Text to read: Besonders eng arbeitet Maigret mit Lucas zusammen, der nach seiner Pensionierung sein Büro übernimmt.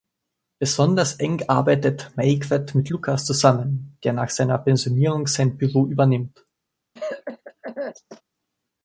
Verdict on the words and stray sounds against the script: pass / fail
fail